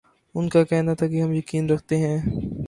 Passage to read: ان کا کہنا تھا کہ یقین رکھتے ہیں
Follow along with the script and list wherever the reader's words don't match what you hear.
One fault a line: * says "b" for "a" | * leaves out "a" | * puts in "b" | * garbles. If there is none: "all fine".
* puts in "ہم"